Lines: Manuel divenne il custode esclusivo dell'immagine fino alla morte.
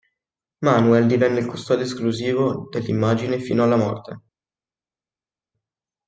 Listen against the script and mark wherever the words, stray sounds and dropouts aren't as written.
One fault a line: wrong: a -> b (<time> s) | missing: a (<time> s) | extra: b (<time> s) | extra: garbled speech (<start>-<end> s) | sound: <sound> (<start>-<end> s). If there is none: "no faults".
no faults